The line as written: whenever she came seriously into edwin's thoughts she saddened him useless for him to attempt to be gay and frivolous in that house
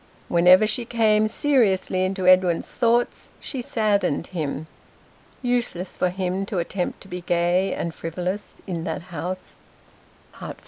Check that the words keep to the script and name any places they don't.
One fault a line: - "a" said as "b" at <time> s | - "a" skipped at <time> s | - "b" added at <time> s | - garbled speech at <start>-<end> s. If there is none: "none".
none